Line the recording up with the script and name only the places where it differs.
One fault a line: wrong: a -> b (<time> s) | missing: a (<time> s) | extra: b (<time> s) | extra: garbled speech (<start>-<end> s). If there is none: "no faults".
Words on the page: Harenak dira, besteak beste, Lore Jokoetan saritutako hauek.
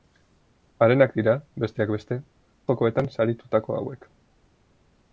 missing: Lore (2.2 s)